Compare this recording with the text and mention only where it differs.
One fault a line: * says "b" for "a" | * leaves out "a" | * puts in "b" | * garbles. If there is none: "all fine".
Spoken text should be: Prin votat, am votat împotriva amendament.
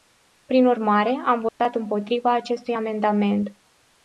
* says "urmare" for "votat"
* puts in "acestui"